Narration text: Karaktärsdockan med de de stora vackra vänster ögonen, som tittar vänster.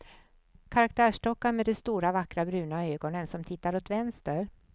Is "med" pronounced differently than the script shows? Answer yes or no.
no